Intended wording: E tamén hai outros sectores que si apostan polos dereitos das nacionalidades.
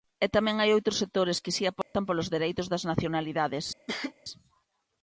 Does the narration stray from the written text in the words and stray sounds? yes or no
yes